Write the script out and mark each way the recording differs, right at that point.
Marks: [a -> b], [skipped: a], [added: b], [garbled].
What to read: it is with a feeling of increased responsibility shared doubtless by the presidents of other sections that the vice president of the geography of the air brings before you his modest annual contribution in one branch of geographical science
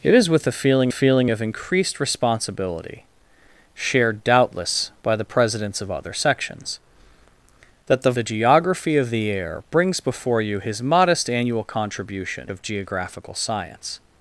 it is with a feeling [added: feeling] of increased responsibility shared doubtless by the presidents of other sections that the [skipped: vice president of] the geography of the air brings before you his modest annual contribution [skipped: in one branch] of geographical science